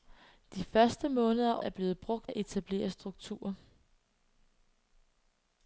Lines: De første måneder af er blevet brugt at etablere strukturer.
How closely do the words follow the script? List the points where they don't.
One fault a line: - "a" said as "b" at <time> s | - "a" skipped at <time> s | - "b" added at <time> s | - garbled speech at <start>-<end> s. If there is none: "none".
none